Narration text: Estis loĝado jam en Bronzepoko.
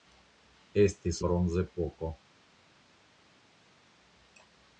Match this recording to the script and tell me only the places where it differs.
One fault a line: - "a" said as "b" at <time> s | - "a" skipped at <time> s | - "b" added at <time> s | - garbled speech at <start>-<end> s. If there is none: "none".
- "loĝado jam en" skipped at 1.2 s